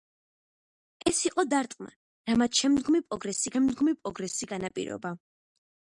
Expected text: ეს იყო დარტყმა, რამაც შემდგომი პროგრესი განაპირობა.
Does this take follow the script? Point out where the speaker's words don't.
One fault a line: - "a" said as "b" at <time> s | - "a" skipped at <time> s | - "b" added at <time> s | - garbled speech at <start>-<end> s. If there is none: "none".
- "შემდგომი პროგრესი" added at 3.5 s